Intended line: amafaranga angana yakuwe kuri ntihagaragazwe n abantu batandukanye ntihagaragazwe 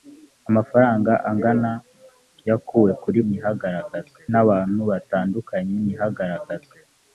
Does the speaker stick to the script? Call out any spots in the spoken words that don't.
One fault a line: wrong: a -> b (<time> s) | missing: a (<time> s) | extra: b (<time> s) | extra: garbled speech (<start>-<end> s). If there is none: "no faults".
no faults